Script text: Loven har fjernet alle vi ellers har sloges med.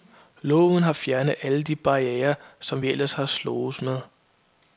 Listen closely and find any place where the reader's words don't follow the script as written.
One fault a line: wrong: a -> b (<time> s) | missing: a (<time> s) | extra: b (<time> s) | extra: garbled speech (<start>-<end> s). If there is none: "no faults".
extra: de barrierer som (1.6 s)